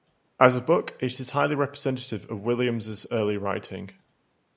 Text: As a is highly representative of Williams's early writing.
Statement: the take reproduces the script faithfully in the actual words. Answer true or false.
false